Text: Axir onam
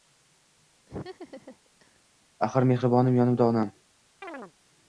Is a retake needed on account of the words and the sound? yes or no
yes